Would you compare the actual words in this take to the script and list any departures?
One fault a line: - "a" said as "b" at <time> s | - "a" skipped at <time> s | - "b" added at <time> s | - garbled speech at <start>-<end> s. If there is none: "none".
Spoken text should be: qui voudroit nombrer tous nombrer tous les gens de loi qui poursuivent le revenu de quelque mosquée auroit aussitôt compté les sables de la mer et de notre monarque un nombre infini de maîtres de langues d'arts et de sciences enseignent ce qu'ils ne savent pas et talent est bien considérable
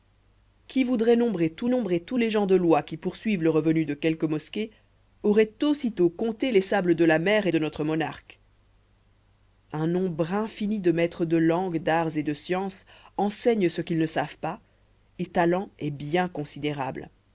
none